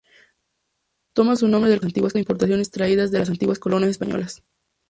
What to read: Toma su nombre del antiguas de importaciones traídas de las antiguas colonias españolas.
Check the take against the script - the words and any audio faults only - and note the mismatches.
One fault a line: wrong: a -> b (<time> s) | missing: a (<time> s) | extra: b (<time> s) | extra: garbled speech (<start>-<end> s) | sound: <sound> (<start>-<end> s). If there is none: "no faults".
no faults